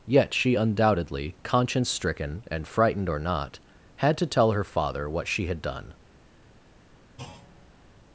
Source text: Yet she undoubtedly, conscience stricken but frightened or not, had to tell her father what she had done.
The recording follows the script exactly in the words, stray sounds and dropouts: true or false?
false